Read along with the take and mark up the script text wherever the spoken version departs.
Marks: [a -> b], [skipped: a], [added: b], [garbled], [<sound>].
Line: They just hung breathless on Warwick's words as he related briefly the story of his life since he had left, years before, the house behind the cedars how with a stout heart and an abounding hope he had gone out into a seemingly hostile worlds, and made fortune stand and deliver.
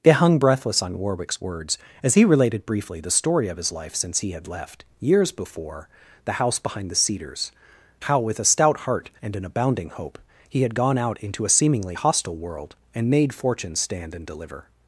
They [skipped: just] hung breathless on Warwick's words as he related briefly the story of his life since he had left, years before, the house behind the cedars how with a stout heart and an abounding hope he had gone out into a seemingly hostile [worlds, -> world] and made fortune stand and deliver.